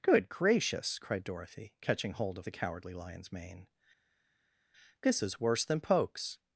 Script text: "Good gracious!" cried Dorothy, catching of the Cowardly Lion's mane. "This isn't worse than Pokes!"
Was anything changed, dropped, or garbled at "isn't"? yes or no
yes